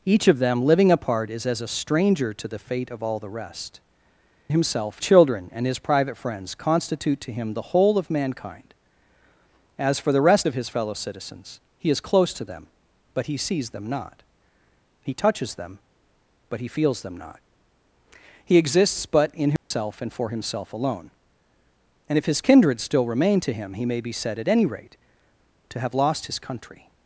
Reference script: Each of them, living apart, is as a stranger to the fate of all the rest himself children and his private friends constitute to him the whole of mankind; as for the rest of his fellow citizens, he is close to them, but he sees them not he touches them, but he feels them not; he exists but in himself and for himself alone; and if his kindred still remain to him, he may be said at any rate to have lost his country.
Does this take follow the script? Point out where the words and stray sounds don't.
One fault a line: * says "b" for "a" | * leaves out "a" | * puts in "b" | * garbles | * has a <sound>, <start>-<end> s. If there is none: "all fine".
* has a dropout, 19.6-19.7 s